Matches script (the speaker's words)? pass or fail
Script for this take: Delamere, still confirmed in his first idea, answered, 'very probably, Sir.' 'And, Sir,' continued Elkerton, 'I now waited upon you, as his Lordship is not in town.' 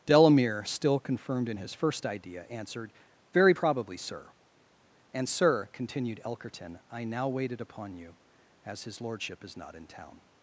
pass